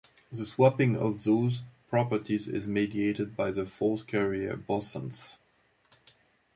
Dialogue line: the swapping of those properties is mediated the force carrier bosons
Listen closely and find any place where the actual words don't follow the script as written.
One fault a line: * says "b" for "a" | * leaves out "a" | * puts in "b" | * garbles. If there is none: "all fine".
* puts in "by"